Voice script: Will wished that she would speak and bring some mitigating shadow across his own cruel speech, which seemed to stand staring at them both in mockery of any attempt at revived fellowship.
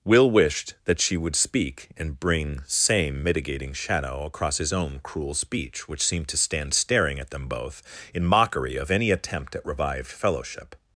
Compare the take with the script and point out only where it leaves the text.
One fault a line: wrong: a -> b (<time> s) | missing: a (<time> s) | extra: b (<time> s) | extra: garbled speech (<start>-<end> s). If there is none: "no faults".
wrong: some -> same (2.6 s)